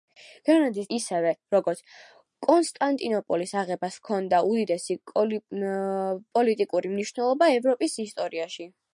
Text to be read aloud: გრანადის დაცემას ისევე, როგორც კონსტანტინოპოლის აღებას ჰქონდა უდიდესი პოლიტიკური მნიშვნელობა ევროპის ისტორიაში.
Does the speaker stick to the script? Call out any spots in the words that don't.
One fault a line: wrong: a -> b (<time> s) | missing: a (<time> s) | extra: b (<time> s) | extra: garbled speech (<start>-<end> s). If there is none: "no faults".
missing: დაცემას (0.9 s)